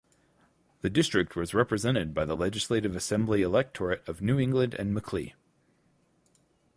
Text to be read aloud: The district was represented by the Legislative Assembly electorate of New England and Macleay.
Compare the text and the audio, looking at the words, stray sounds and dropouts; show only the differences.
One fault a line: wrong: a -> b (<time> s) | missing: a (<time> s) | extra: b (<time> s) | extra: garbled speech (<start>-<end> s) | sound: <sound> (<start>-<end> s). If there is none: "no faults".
no faults